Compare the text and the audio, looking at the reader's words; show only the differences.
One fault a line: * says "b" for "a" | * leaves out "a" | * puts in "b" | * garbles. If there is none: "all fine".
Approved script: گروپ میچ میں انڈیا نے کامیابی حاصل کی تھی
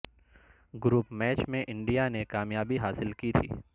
all fine